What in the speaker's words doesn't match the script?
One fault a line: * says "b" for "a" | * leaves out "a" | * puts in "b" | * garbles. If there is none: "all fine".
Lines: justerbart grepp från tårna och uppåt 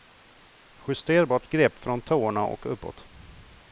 all fine